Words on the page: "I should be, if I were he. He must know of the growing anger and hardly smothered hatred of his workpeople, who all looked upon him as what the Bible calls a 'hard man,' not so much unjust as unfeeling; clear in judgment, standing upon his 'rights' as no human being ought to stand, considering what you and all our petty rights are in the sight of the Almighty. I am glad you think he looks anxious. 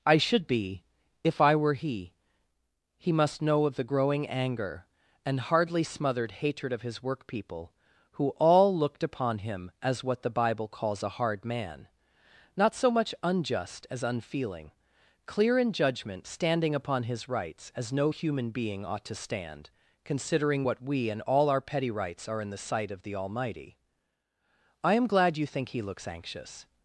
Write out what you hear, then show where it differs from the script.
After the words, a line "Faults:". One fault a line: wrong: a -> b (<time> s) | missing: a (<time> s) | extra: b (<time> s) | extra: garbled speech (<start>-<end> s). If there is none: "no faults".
"I should be, if I were he. He must know of the growing anger and hardly smothered hatred of his workpeople, who all looked upon him as what the Bible calls a 'hard man,' not so much unjust as unfeeling; clear in judgment, standing upon his 'rights' as no human being ought to stand, considering what we and all our petty rights are in the sight of the Almighty. I am glad you think he looks anxious.
Faults:
wrong: you -> we (20.8 s)